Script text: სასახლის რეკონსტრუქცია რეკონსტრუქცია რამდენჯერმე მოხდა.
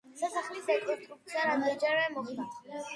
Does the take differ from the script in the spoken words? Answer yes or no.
yes